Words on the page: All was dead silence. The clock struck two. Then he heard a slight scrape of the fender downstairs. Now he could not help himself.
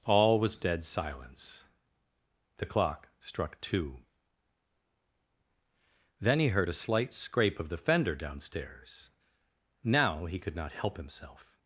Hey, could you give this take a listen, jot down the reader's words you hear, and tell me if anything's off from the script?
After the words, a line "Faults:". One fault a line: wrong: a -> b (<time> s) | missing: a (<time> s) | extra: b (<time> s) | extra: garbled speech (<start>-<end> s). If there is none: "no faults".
All was dead silence. The clock struck two. Then he heard a slight scrape of the fender downstairs. Now he could not help himself.
Faults:
no faults